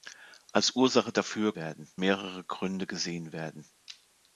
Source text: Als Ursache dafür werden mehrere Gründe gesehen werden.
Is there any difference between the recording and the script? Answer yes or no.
no